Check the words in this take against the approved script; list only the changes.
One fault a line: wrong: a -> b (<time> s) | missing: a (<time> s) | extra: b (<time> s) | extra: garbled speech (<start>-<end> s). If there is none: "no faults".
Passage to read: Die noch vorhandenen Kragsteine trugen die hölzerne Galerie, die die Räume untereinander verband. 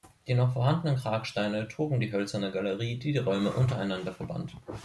no faults